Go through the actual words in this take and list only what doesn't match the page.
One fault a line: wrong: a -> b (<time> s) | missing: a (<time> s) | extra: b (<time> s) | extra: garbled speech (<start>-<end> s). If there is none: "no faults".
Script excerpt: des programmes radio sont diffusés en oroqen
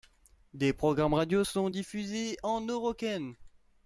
no faults